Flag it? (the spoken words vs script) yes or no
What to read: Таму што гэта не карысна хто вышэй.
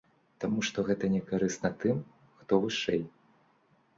yes